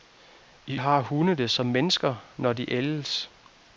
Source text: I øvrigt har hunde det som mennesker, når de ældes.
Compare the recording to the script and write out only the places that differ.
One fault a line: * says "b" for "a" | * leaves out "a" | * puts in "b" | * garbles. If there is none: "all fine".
* leaves out "øvrigt"